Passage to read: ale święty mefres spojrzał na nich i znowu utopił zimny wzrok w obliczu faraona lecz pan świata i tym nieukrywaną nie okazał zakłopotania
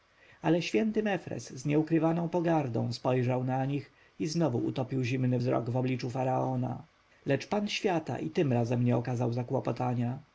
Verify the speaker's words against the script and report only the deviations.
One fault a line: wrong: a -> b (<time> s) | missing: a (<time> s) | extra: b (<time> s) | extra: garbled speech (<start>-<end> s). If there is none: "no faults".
extra: z nieukrywaną pogardą (1.5 s)
wrong: nieukrywaną -> razem (8.5 s)